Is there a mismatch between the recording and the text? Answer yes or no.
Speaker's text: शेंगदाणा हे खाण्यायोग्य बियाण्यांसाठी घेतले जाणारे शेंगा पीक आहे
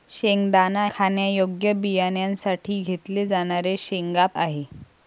yes